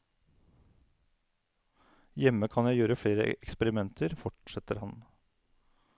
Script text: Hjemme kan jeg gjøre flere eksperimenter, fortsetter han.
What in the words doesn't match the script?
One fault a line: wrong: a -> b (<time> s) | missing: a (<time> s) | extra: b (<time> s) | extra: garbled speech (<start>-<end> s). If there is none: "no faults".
no faults